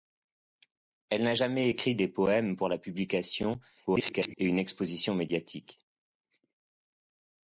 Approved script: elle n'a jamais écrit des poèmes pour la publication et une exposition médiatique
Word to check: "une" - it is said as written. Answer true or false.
true